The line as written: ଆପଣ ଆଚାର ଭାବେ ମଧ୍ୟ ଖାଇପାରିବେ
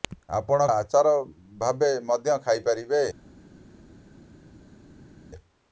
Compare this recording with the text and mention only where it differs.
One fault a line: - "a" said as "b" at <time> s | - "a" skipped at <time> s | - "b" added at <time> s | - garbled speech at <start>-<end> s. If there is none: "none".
none